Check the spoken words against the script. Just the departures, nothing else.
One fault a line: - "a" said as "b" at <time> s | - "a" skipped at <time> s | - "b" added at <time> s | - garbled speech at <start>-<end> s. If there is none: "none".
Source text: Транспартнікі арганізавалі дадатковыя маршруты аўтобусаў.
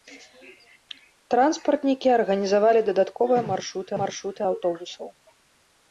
- "маршруты" added at 4.0 s